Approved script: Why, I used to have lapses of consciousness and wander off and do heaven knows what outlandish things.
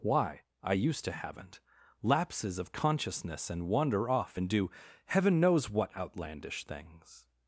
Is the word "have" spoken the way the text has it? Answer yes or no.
no